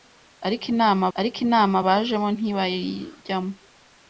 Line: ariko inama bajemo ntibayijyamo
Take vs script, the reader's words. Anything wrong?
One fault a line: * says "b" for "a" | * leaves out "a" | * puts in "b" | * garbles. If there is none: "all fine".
* puts in "ariko inama"